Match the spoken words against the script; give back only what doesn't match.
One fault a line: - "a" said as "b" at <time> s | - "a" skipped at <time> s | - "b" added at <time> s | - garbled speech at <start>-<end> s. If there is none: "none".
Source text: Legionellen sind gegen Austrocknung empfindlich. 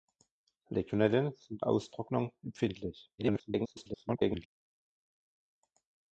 - "gegen" skipped at 1.6 s
- garbled speech at 3.2-4.5 s